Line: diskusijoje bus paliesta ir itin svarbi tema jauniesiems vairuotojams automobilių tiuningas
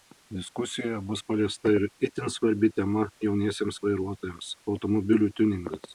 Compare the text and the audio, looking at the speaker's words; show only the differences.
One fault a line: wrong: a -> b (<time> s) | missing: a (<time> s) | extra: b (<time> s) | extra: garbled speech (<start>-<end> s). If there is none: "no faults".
no faults